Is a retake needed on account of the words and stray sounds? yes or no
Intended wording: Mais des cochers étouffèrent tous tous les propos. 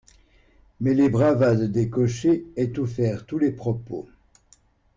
yes